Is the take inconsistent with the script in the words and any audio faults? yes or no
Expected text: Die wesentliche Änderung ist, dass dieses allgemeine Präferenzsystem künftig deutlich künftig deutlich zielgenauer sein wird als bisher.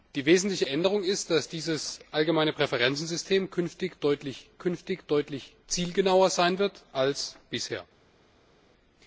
no